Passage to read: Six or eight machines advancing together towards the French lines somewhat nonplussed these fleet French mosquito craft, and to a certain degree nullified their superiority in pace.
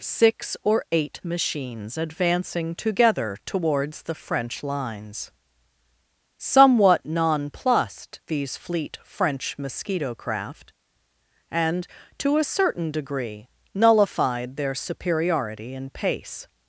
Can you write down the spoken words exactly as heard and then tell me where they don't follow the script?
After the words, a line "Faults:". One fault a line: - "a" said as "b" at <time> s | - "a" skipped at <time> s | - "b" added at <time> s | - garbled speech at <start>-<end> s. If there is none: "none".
Six or eight machines advancing together towards the French lines somewhat nonplussed these fleet French mosquito craft, and to a certain degree nullified their superiority in pace.
Faults:
none